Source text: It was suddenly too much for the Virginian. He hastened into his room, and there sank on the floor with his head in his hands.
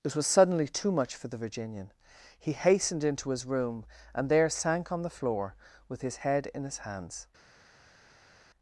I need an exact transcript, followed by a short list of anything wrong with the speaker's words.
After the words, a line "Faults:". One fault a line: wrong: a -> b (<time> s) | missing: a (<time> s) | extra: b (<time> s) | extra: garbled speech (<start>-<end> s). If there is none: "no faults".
It was suddenly too much for the Virginian. He hastened into his room, and there sank on the floor with his head in his hands.
Faults:
no faults